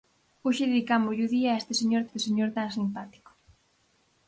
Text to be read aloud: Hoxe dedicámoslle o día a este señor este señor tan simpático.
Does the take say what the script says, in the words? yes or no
yes